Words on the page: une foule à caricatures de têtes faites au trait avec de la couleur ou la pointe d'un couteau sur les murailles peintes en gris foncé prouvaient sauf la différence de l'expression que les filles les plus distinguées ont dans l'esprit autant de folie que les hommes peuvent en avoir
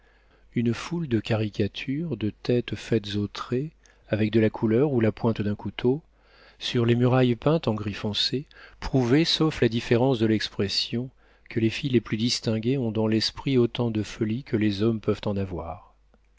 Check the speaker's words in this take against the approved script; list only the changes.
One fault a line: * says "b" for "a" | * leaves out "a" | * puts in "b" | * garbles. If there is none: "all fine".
* says "de" for "à"